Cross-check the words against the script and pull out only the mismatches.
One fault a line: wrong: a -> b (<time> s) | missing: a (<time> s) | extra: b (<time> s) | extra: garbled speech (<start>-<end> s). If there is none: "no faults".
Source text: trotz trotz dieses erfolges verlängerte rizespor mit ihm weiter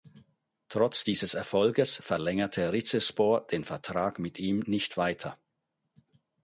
missing: trotz (1.1 s)
extra: den vertrag (3.5 s)
extra: nicht (4.6 s)